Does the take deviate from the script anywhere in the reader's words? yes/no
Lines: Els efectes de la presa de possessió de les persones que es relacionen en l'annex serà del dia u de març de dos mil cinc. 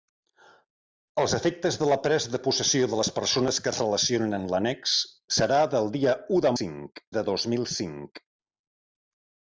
yes